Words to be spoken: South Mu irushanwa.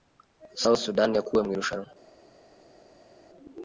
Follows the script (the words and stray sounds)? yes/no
no